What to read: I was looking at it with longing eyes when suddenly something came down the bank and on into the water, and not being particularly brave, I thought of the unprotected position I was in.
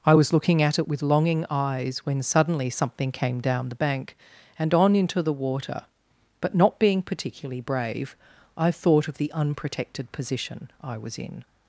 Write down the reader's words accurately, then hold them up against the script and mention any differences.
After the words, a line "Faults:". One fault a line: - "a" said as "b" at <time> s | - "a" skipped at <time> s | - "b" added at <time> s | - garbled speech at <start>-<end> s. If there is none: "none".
I was looking at it with longing eyes when suddenly something came down the bank and on into the water, but not being particularly brave, I thought of the unprotected position I was in.
Faults:
- "and" said as "but" at 6.4 s